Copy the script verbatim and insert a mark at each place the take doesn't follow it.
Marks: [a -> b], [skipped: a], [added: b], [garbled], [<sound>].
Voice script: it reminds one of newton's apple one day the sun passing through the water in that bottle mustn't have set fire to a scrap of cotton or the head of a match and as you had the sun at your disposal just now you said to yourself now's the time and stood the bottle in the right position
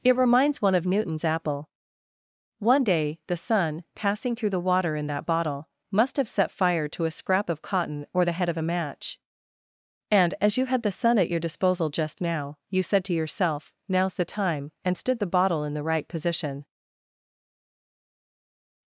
it reminds one of newton's apple one day the sun passing through the water in that bottle [mustn't -> must] have set fire to a scrap of cotton or the head of a match and as you had the sun at your disposal just now you said to yourself now's the time and stood the bottle in the right position